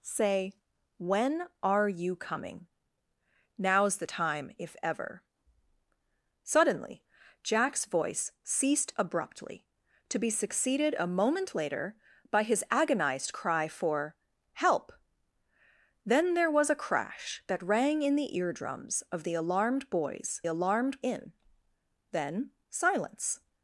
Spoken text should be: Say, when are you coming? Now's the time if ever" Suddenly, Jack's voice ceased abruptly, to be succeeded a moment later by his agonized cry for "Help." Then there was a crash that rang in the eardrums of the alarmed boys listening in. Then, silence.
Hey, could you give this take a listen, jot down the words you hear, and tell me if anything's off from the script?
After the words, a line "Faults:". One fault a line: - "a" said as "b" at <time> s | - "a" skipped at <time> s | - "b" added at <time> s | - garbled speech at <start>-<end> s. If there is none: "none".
Say, when are you coming? Now's the time if ever" Suddenly, Jack's voice ceased abruptly, to be succeeded a moment later by his agonized cry for "Help." Then there was a crash that rang in the eardrums of the alarmed boys alarmed in. Then, silence.
Faults:
- "listening" said as "alarmed" at 20.5 s